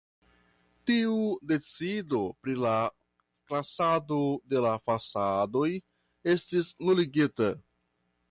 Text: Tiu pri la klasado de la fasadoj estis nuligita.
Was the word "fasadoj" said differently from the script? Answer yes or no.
no